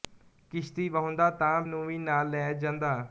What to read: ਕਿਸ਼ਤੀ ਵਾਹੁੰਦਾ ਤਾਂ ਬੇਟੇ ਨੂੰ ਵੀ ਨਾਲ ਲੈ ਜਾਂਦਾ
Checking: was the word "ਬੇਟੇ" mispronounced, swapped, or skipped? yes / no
yes